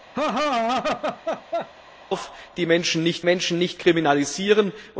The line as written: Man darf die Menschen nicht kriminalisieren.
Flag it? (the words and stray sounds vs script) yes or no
yes